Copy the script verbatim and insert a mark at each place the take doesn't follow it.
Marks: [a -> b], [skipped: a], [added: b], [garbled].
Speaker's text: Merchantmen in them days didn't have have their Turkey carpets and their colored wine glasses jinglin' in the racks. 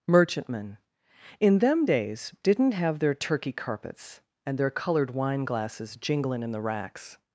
Merchantmen in them days didn't have [skipped: have] their Turkey carpets and their colored wine glasses jinglin' in the racks.